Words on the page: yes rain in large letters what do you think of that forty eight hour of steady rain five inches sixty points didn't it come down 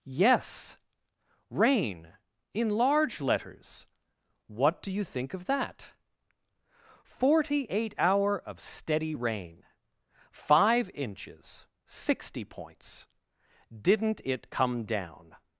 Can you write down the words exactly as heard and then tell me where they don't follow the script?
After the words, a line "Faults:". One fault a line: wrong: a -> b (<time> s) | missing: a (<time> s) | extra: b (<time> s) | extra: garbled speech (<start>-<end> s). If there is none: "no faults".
yes rain in large letters what do you think of that forty eight hour of steady rain five inches sixty points didn't it come down
Faults:
no faults